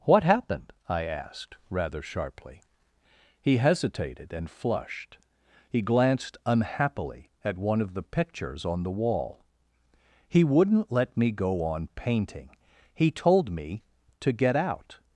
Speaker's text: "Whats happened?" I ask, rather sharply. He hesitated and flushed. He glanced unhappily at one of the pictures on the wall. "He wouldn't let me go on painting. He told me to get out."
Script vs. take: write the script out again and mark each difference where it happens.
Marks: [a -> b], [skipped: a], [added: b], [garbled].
["Whats -> What] happened?" I [ask, -> asked] rather sharply. He hesitated and flushed. He glanced unhappily at one of the pictures on the wall. "He wouldn't let me go on painting. He told me to get out."